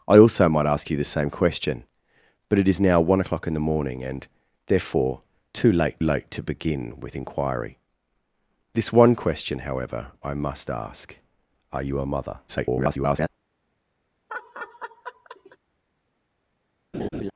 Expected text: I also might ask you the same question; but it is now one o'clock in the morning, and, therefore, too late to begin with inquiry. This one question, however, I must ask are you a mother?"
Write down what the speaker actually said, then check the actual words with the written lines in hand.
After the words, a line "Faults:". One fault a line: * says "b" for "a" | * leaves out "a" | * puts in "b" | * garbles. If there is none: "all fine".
I also might ask you the same question; but it is now one o'clock in the morning, and, therefore, too late late to begin with inquiry. This one question, however, I must ask are you a mother?" [garbled]
Faults:
* puts in "late"
* garbles